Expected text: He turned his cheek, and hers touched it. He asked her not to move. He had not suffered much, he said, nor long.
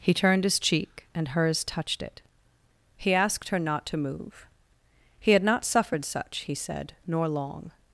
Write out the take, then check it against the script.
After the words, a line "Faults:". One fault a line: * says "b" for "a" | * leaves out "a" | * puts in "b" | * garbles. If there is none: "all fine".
He turned his cheek, and hers touched it. He asked her not to move. He had not suffered such, he said, nor long.
Faults:
* says "such" for "much"